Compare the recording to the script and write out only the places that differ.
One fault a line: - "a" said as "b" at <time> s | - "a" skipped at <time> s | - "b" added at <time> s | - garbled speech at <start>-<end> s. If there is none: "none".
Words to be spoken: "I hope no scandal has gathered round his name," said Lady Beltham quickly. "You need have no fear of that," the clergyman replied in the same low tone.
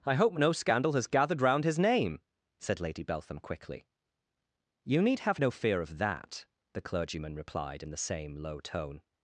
none